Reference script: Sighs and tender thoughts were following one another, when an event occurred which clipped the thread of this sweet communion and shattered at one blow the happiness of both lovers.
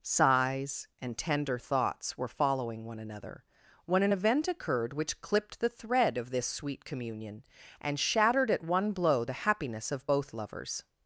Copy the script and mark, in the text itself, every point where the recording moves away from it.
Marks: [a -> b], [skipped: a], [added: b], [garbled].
Sighs and tender thoughts were following one another, when an event occurred which clipped the thread of this sweet communion and shattered at one blow the happiness of both lovers.